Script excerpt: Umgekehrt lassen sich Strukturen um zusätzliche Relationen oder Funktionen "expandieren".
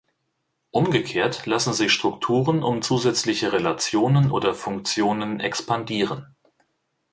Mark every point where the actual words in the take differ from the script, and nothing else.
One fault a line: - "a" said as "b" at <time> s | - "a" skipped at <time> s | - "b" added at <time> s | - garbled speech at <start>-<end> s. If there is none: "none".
none